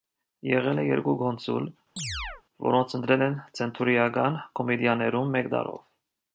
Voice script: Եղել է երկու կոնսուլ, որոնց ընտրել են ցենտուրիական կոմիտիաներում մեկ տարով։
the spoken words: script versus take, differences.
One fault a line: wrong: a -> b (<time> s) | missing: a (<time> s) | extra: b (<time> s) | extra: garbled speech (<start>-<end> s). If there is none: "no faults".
no faults